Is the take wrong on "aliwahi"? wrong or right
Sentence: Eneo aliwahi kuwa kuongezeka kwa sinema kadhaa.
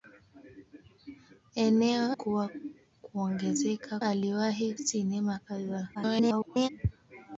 wrong